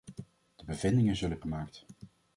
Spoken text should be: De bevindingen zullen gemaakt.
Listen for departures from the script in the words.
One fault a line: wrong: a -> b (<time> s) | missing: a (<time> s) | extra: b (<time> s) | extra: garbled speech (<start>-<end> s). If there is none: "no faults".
no faults